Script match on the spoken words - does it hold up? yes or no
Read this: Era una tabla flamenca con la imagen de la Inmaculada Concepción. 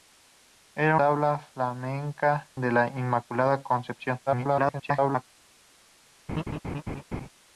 no